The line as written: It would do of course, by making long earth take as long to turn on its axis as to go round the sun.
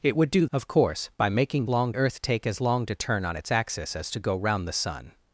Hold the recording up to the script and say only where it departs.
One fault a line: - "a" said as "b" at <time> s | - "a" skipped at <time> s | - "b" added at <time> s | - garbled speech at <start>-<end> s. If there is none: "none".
none